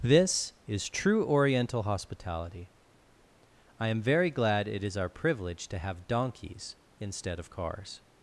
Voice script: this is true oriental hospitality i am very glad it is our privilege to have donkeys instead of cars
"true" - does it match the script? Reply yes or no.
yes